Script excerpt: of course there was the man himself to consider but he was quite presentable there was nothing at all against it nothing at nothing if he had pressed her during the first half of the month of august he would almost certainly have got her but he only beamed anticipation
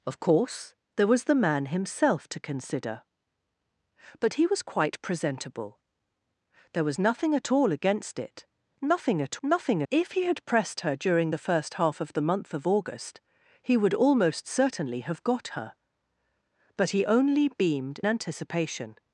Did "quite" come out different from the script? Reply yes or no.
no